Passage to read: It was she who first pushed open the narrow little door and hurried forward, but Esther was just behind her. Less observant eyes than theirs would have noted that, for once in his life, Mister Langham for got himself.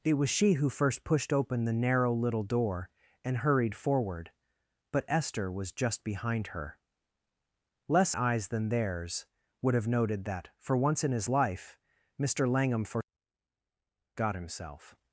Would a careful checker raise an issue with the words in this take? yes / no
yes